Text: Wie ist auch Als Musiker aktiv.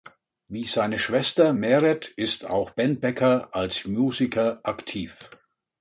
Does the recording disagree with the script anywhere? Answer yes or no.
yes